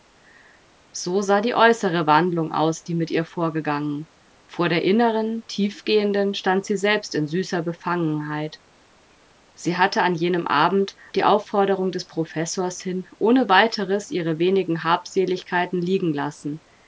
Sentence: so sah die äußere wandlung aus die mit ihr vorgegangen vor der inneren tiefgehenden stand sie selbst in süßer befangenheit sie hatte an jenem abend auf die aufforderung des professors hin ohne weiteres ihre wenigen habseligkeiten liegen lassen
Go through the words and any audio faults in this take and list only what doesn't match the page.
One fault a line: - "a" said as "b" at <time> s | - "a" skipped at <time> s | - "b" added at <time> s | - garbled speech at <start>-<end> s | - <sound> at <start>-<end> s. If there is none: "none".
- "auf" skipped at 10.9 s